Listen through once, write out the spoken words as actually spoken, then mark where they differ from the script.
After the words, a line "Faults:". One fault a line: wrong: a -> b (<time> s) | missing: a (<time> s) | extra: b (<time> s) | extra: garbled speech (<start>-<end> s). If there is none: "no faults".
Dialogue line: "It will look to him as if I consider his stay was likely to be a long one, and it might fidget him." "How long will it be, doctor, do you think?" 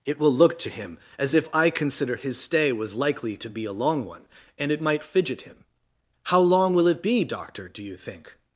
"It will look to him as if I consider his stay was likely to be a long one, and it might fidget him." "How long will it be, doctor, do you think?"
Faults:
no faults